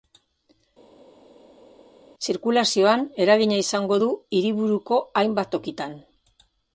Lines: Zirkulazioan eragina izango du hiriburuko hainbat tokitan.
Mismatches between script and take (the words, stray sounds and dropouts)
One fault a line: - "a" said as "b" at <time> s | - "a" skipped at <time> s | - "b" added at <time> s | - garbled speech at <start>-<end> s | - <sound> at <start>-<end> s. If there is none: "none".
none